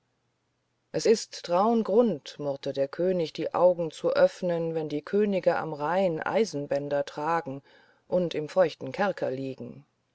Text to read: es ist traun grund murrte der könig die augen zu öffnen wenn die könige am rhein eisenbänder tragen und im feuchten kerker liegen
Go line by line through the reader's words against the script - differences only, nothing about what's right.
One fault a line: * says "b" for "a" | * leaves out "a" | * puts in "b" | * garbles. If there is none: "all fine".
all fine